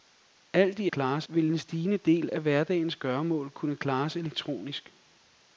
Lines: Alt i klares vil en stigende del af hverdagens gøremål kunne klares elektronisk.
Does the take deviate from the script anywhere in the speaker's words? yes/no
no